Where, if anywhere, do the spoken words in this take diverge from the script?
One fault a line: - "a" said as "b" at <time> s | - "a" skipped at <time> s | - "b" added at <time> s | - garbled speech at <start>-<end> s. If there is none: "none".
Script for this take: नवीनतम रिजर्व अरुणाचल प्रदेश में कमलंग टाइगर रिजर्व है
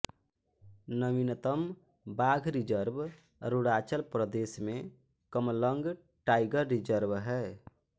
- "बाघ" added at 2.2 s